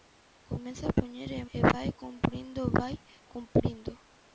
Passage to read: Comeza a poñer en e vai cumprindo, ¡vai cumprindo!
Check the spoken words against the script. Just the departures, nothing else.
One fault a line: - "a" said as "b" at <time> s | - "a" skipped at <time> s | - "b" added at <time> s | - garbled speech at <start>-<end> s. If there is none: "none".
none